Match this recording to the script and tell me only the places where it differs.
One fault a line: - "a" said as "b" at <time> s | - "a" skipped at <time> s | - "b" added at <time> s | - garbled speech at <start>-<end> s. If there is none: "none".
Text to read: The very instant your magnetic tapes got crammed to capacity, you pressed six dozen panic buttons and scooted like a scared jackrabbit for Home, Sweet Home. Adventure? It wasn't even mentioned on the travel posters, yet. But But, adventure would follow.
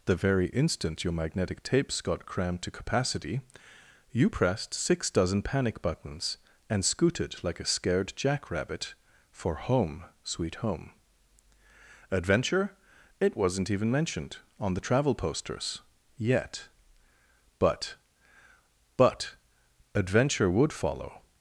none